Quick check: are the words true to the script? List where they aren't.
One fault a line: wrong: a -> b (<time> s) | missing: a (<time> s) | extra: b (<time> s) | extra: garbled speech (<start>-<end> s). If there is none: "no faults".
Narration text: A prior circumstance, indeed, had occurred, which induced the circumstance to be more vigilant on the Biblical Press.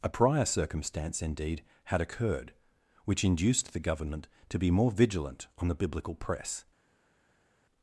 wrong: circumstance -> government (3.8 s)